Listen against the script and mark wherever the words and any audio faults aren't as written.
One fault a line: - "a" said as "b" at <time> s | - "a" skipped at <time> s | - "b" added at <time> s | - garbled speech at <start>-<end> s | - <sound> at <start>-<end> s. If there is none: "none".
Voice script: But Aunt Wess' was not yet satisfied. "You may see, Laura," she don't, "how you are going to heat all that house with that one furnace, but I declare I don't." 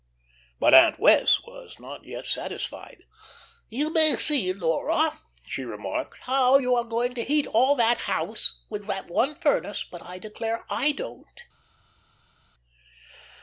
- "don't" said as "remarked" at 5.6 s